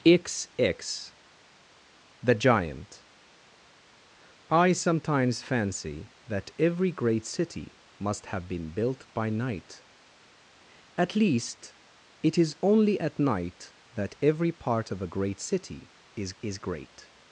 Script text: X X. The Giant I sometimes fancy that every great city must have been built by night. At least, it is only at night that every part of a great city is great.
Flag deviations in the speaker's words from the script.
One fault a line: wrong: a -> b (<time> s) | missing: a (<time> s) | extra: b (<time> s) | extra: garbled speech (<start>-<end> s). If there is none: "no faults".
extra: is (16.4 s)